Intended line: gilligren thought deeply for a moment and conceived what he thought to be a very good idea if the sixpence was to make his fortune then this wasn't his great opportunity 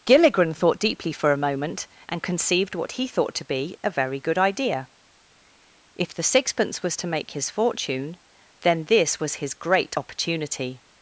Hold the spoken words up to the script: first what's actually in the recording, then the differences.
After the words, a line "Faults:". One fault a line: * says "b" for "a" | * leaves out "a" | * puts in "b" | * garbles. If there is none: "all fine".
gilligren thought deeply for a moment and conceived what he thought to be a very good idea if the sixpence was to make his fortune then this was his great opportunity
Faults:
* says "was" for "wasn't"